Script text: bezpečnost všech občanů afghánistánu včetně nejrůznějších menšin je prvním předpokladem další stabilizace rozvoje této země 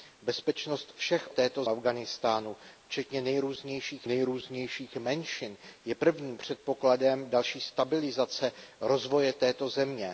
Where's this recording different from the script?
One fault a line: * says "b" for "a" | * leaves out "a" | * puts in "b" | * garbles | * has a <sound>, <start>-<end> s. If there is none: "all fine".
* says "této" for "občanů"
* puts in "nejrůznějších"